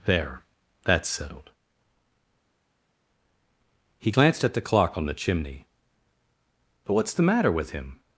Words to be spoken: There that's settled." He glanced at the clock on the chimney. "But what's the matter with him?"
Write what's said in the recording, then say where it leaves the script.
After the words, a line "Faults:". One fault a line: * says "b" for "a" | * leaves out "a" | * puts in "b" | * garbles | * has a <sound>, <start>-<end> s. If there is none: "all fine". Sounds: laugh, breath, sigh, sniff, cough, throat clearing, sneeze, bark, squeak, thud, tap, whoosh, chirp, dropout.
There that's settled." He glanced at the clock on the chimney. "But what's the matter with him?"
Faults:
all fine